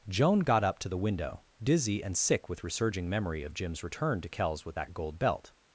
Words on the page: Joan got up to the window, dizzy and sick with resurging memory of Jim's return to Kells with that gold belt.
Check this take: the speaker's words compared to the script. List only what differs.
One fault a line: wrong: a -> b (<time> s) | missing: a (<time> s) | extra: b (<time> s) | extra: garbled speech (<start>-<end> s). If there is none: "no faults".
no faults